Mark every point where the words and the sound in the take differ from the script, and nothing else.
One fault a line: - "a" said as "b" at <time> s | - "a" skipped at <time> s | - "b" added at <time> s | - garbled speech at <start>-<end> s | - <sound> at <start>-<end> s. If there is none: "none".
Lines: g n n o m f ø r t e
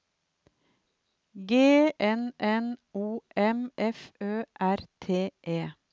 none